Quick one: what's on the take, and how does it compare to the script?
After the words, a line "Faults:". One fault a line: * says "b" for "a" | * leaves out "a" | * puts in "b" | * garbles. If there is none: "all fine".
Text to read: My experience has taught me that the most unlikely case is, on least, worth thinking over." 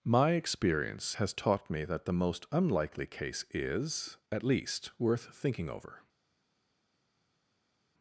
My experience has taught me that the most unlikely case is, at least, worth thinking over."
Faults:
* says "at" for "on"